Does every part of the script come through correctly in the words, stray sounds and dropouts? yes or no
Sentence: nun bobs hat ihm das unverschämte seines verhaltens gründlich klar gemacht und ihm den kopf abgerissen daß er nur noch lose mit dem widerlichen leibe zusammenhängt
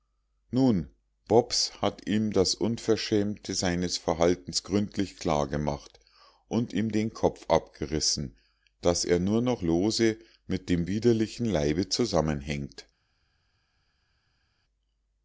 yes